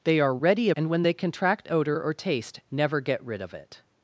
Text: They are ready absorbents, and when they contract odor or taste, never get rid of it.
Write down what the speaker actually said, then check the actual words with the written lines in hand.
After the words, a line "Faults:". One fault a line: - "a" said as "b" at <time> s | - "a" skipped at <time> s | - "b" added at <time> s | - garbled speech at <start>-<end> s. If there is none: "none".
They are ready and when they contract odor or taste, never get rid of it.
Faults:
- "absorbents" skipped at 0.7 s